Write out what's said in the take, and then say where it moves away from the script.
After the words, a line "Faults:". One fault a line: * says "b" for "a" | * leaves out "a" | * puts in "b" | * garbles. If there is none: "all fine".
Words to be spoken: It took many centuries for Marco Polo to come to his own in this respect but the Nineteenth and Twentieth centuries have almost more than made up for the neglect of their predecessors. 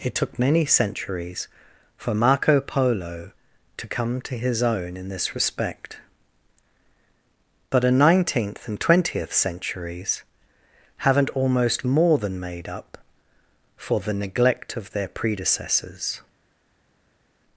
It took many centuries for Marco Polo to come to his own in this respect but a Nineteenth and Twentieth centuries haven't almost more than made up for the neglect of their predecessors.
Faults:
* says "a" for "the"
* says "haven't" for "have"